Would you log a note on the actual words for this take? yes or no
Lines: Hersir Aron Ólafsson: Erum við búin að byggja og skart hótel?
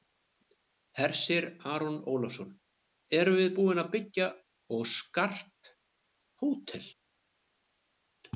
no